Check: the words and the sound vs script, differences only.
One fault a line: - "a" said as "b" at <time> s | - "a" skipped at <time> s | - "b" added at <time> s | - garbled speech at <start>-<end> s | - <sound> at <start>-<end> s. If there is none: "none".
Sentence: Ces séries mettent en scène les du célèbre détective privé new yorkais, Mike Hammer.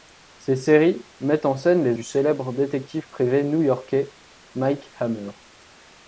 none